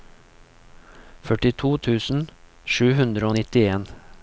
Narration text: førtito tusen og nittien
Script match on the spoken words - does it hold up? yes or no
no